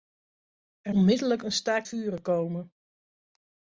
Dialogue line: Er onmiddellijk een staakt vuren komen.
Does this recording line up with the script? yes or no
yes